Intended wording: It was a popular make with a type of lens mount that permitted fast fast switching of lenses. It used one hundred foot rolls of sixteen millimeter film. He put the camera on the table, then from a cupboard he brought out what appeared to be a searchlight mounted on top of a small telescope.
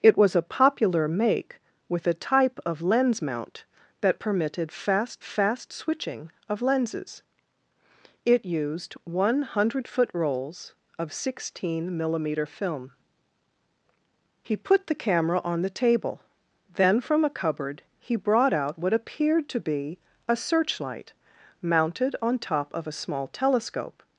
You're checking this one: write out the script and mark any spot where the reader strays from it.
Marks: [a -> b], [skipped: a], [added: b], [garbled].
It was a popular make with a type of lens mount that permitted fast fast switching of lenses. It used one hundred foot rolls of sixteen millimeter film. He put the camera on the table, then from a cupboard he brought out what appeared to be a searchlight mounted on top of a small telescope.